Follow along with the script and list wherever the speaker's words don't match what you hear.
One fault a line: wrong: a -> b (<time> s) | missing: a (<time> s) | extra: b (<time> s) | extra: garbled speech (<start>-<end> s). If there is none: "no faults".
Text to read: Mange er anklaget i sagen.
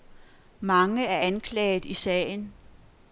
no faults